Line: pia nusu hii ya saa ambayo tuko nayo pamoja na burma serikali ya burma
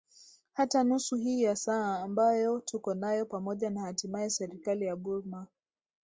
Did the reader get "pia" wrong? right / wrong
wrong